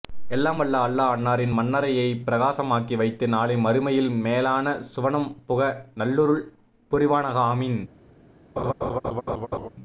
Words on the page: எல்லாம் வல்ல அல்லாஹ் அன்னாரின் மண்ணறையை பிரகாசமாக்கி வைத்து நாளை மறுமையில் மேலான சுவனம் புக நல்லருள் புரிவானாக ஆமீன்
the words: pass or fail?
pass